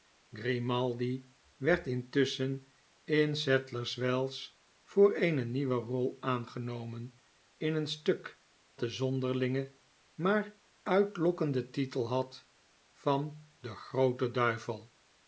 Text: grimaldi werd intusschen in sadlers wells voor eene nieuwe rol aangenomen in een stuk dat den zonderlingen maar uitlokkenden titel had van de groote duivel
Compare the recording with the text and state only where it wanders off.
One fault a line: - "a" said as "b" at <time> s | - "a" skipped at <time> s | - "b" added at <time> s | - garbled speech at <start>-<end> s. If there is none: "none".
- "dat" skipped at 8.4 s